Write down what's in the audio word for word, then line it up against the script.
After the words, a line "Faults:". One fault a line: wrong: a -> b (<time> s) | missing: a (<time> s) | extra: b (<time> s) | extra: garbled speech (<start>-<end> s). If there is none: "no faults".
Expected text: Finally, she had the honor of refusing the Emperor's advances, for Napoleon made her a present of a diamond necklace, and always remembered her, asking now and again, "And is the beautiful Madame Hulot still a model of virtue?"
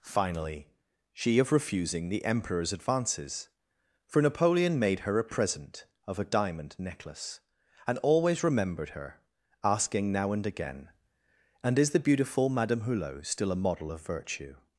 Finally, she of refusing the Emperor's advances, for Napoleon made her a present of a diamond necklace, and always remembered her, asking now and again, "And is the beautiful Madame Hulot still a model of virtue?"
Faults:
missing: had the honor (1.4 s)